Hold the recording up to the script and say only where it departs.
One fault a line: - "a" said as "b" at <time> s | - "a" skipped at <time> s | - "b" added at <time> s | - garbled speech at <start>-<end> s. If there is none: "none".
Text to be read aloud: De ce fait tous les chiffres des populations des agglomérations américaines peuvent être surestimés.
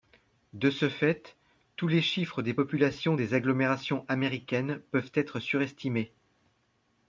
none